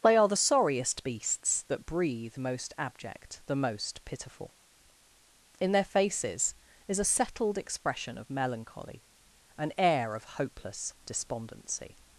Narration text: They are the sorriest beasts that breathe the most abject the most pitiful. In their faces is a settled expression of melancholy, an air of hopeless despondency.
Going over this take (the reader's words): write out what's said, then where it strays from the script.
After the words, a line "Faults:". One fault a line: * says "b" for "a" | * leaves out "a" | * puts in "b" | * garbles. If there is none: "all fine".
They are the sorriest beasts that breathe most abject the most pitiful. In their faces is a settled expression of melancholy, an air of hopeless despondency.
Faults:
* leaves out "the"